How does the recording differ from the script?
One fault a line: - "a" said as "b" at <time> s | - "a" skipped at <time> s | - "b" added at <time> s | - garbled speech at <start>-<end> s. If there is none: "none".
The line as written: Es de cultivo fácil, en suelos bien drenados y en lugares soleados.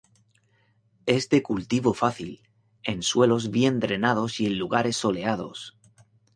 none